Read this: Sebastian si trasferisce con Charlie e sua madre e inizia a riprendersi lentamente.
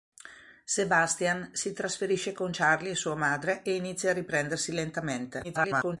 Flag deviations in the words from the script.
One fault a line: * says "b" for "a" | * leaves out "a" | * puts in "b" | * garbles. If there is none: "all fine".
* garbles